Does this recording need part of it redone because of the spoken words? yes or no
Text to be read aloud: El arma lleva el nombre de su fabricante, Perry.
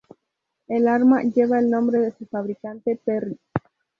no